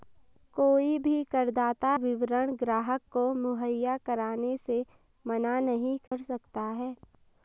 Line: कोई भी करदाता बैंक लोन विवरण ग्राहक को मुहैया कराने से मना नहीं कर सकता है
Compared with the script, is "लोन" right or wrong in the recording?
wrong